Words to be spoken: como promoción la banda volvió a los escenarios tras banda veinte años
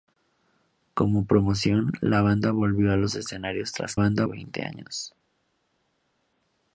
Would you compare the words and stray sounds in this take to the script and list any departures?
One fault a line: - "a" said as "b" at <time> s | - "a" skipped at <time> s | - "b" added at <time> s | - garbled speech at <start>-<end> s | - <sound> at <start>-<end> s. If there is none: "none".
none